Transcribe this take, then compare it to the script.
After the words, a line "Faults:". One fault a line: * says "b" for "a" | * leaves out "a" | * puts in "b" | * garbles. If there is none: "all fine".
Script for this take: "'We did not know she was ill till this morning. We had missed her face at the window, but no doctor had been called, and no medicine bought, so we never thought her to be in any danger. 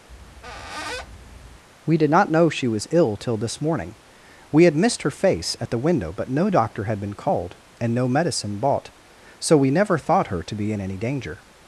"'We did not know she was ill till this morning. We had missed her face at the window, but no doctor had been called, and no medicine bought, so we never thought her to be in any danger.
Faults:
all fine